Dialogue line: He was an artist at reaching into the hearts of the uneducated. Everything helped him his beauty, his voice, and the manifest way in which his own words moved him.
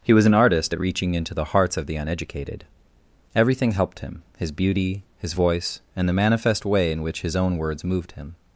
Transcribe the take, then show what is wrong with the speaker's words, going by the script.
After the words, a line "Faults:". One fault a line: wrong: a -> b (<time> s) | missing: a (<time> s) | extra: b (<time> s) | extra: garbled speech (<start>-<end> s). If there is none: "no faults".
He was an artist at reaching into the hearts of the uneducated. Everything helped him his beauty, his voice, and the manifest way in which his own words moved him.
Faults:
no faults